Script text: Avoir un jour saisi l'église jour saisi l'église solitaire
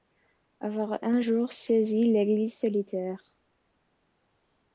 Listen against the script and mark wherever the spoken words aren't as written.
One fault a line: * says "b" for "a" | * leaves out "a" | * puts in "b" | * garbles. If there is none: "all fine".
* leaves out "jour saisi l'église"